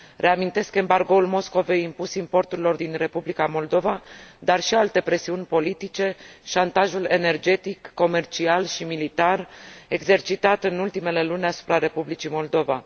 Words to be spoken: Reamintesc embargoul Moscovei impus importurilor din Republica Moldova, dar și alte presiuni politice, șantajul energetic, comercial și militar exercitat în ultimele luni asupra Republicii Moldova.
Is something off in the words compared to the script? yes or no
no